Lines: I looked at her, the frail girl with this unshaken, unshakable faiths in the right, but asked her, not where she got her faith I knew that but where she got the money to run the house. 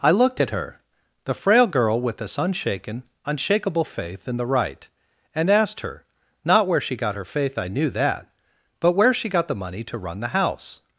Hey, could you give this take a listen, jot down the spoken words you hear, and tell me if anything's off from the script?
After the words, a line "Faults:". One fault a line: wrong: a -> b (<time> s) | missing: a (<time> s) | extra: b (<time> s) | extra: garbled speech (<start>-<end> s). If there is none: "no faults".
I looked at her, the frail girl with this unshaken, unshakable faith in the right, and asked her, not where she got her faith I knew that but where she got the money to run the house.
Faults:
wrong: faiths -> faith (3.9 s)
wrong: but -> and (5.3 s)